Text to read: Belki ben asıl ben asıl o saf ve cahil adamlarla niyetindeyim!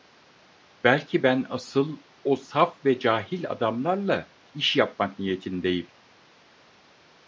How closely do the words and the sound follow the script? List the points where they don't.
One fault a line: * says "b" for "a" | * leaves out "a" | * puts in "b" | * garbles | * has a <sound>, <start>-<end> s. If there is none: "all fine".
* leaves out "ben asıl"
* puts in "iş yapmak"